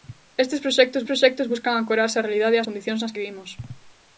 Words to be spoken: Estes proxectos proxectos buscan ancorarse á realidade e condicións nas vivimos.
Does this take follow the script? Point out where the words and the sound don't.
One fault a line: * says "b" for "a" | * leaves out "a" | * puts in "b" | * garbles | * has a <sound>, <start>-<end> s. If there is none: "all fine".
all fine